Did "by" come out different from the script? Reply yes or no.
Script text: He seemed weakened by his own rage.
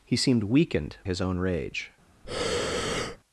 yes